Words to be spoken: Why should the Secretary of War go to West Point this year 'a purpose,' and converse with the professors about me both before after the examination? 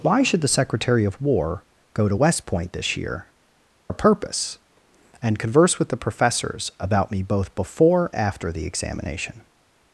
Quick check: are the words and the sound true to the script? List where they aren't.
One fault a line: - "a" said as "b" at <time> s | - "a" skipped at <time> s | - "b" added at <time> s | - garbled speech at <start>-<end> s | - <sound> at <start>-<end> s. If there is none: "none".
none